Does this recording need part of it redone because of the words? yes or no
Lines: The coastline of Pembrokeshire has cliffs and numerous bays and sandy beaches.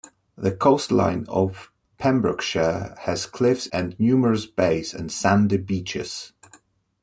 no